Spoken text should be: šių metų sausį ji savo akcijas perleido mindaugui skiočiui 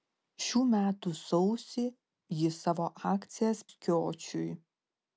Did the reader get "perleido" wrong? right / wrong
wrong